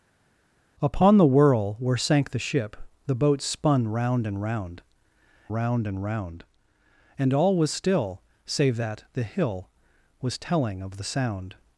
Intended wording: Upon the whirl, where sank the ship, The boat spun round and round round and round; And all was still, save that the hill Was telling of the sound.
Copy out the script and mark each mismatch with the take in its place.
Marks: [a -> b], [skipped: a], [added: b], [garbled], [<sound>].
Upon the whirl, where sank the ship, The boat spun round and round round and round; And all was still, save that the hill Was telling of the sound.